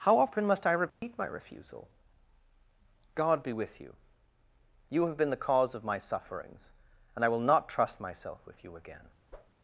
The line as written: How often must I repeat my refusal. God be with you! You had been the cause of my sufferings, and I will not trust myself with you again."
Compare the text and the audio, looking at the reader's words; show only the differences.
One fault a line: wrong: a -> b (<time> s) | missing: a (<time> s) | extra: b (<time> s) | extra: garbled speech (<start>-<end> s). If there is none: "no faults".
wrong: had -> have (5.1 s)